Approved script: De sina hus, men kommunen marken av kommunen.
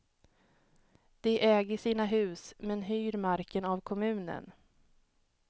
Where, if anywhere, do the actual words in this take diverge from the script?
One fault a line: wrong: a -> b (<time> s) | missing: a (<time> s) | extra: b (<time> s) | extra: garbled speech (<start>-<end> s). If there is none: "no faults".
extra: äger (1.4 s)
wrong: kommunen -> hyr (2.8 s)